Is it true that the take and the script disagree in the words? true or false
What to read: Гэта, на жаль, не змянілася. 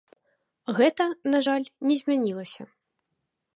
false